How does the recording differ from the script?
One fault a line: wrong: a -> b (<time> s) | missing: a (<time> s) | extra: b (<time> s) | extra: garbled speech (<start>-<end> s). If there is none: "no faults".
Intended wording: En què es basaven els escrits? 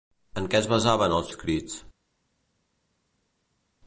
no faults